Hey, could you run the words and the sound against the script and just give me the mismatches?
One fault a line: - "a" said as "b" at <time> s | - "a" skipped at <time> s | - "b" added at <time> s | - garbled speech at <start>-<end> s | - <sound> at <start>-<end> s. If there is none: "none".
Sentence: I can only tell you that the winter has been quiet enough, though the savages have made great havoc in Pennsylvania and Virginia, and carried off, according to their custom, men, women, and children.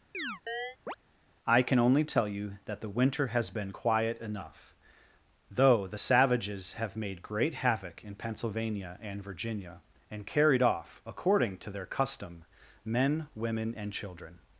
- chirp at 0.1-1.0 s